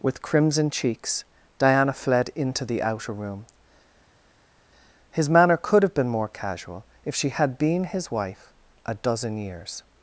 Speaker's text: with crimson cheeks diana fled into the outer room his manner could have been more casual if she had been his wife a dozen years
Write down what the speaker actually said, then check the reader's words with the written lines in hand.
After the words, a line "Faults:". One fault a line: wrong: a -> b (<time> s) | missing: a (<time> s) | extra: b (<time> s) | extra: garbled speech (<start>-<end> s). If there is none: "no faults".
with crimson cheeks diana fled into the outer room his manner could have been more casual if she had been his wife a dozen years
Faults:
no faults